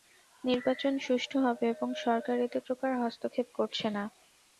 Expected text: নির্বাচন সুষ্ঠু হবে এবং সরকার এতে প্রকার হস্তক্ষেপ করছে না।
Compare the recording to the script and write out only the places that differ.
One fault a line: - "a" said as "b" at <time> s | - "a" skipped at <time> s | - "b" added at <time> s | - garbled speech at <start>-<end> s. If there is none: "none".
none